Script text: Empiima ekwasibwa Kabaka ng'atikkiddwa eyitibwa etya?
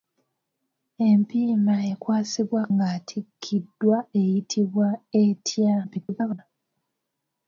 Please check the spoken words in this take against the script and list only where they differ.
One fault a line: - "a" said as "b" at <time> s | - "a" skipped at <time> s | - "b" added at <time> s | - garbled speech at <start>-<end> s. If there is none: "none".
- "Kabaka" skipped at 2.6 s
- garbled speech at 5.8-6.4 s